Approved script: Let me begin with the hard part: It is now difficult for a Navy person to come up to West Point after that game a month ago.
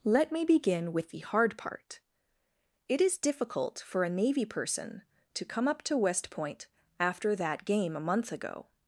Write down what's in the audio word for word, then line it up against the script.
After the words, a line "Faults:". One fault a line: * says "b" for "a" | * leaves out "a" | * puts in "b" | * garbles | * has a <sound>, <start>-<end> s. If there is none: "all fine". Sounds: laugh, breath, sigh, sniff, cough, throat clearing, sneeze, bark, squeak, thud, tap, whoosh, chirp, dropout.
Let me begin with the hard part: It is difficult for a Navy person to come up to West Point after that game a month ago.
Faults:
* leaves out "now"